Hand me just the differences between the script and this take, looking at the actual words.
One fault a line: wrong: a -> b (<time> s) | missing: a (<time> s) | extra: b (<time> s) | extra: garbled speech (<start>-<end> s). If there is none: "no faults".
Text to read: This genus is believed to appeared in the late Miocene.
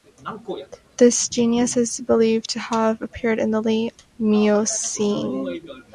extra: have (2.6 s)